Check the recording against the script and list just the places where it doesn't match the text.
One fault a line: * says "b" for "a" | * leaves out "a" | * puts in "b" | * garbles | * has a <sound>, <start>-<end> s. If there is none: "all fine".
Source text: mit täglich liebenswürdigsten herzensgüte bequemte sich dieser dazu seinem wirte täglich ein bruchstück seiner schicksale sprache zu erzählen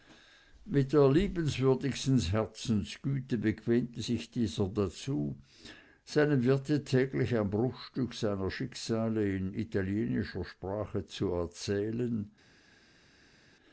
* says "der" for "täglich"
* puts in "in italienischer"